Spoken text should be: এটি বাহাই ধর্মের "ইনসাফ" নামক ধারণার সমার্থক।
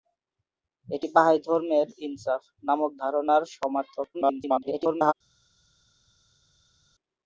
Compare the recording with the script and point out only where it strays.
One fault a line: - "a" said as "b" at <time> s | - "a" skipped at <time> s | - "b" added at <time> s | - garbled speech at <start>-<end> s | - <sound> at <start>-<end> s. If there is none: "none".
- garbled speech at 4.1-5.1 s